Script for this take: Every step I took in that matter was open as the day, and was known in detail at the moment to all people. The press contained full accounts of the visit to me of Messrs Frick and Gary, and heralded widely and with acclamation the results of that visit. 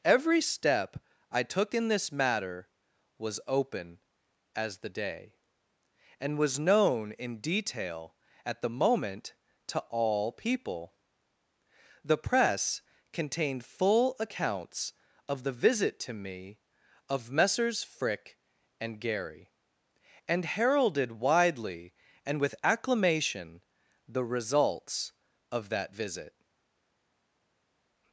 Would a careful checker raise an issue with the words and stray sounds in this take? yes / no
yes